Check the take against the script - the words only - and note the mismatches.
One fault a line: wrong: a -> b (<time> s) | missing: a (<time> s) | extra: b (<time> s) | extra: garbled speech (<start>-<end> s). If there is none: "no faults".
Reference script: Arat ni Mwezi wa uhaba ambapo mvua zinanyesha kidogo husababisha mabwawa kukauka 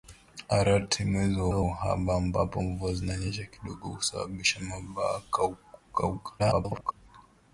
extra: wa (1.5 s)
extra: garbled speech (6.4-6.9 s)